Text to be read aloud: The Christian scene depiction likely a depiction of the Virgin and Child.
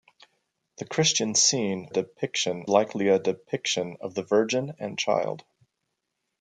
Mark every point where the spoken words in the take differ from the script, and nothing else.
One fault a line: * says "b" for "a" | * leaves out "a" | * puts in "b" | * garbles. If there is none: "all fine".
all fine